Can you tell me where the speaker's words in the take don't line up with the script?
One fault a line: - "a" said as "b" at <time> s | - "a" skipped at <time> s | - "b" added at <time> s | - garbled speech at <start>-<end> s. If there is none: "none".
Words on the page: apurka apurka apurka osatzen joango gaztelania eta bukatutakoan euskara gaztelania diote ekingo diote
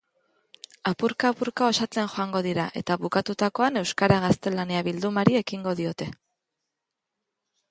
- "apurka" skipped at 1.7 s
- "gaztelania" said as "dira" at 2.5 s
- "diote" said as "bildumari" at 4.9 s